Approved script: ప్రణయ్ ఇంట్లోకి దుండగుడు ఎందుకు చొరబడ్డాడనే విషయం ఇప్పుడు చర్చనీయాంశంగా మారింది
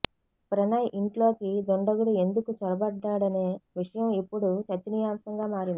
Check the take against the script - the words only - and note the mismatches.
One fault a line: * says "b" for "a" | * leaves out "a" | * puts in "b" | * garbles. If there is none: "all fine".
all fine